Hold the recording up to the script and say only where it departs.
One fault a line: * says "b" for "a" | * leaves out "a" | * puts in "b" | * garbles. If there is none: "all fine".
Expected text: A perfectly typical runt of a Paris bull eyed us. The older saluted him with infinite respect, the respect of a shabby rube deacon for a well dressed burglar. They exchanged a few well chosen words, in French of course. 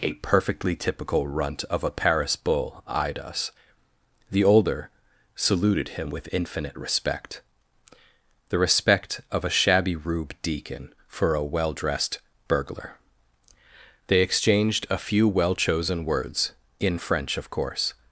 all fine